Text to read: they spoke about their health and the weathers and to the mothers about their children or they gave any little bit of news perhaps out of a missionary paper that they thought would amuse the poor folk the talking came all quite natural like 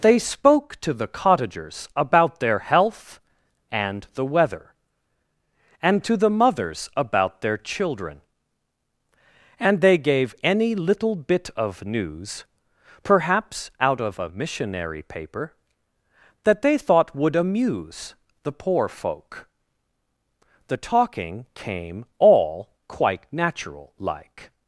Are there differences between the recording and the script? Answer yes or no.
yes